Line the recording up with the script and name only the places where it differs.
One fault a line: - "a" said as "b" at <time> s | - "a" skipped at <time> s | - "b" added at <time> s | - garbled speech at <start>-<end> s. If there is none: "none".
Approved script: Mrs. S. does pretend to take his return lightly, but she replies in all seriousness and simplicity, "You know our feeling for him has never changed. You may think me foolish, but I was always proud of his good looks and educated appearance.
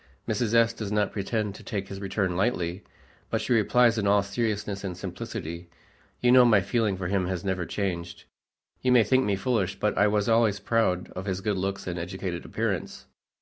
- "not" added at 0.9 s
- "our" said as "my" at 6.4 s